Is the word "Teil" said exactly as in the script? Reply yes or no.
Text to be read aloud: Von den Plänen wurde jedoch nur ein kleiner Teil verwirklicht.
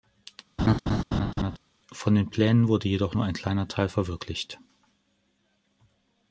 yes